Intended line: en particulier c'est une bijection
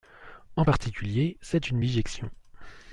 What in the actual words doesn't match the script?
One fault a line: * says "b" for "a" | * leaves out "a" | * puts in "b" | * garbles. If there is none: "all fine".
all fine